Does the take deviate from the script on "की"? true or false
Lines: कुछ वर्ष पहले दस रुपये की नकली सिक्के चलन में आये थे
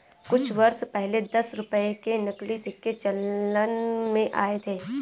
true